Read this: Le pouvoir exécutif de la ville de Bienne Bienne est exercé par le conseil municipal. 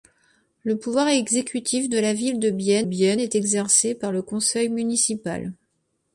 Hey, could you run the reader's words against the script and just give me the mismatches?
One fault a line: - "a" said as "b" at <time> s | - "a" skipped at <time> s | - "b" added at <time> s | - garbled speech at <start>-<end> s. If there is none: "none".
none